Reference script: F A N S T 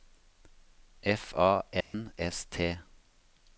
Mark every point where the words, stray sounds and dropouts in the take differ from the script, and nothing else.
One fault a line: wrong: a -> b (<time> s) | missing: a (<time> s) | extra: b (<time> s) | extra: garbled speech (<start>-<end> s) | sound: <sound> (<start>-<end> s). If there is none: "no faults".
sound: dropout (1.8-1.9 s)